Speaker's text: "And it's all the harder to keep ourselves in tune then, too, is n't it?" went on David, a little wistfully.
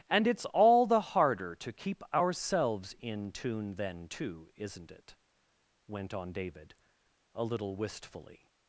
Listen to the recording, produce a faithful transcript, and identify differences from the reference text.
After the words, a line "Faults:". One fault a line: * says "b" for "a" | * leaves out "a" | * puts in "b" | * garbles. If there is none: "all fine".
"And it's all the harder to keep ourselves in tune then, too, is n't it?" went on David, a little wistfully.
Faults:
all fine